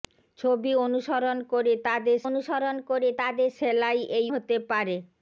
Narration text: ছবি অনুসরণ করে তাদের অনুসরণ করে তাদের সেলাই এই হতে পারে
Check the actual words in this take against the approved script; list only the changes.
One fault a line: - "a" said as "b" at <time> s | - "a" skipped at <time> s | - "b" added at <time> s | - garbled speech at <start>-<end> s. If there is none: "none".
none